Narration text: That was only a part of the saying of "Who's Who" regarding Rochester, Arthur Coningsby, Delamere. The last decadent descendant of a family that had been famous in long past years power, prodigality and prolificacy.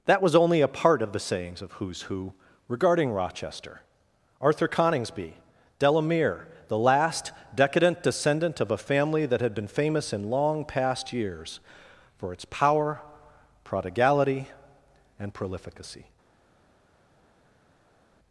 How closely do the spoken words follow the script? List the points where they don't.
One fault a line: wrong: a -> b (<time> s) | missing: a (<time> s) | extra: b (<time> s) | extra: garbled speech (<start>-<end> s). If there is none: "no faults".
wrong: saying -> sayings (1.2 s)
extra: for its (12.2 s)